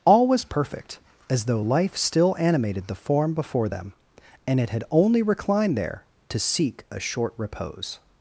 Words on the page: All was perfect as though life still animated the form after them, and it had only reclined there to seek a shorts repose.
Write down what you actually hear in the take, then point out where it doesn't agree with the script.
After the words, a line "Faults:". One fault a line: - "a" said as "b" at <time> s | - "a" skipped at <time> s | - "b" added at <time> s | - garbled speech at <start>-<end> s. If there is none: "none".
All was perfect as though life still animated the form before them, and it had only reclined there to seek a short repose.
Faults:
- "after" said as "before" at 3.3 s
- "shorts" said as "short" at 7.0 s